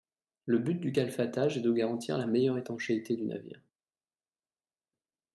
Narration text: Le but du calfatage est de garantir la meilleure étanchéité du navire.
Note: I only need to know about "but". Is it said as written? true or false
true